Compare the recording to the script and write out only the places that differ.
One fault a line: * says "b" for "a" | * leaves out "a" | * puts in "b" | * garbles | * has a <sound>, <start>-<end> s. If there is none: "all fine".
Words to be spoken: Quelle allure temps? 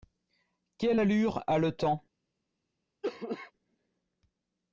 * puts in "a le"
* has a cough, 3.0-3.5 s